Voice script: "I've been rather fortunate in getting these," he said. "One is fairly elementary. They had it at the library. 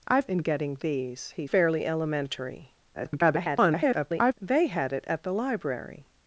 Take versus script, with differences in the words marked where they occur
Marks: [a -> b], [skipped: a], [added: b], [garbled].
"I've [skipped: been rather fortunate] in getting these," he [skipped: said. "One is] fairly elementary. [garbled] They had it at the library.